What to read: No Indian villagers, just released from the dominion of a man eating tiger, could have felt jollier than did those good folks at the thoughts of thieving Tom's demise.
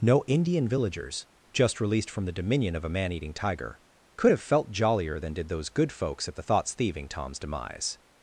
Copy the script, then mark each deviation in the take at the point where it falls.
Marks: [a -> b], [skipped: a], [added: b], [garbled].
No Indian villagers, just released from the dominion of a man eating tiger, could have felt jollier than did those good folks at the thoughts [skipped: of] thieving Tom's demise.